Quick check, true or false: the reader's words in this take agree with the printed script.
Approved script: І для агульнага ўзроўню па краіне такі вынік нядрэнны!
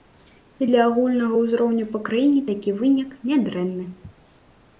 true